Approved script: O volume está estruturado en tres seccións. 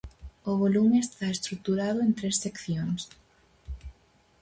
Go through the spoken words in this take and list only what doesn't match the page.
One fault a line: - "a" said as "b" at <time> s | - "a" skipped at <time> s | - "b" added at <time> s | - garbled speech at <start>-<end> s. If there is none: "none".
none